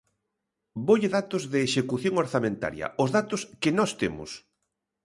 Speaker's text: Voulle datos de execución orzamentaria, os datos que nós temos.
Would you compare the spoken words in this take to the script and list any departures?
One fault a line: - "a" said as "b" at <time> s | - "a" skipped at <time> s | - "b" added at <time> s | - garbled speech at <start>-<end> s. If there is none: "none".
none